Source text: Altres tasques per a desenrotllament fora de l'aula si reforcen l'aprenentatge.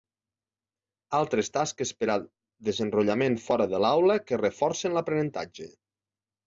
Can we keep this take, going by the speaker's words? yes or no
no